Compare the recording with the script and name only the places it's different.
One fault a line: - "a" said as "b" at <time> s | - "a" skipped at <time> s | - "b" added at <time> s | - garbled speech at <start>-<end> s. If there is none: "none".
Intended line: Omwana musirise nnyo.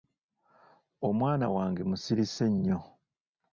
- "wange" added at 1.6 s